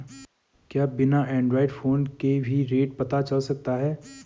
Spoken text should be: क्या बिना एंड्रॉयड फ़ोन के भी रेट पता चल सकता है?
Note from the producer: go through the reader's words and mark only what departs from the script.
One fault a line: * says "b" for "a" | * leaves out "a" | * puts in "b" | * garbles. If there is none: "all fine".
all fine